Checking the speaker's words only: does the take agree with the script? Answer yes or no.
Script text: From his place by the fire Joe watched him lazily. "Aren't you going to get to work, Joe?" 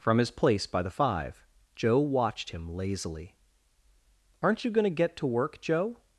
no